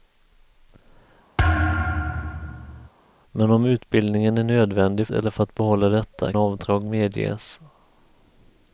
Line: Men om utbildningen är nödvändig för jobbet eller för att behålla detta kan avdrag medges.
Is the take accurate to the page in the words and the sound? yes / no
no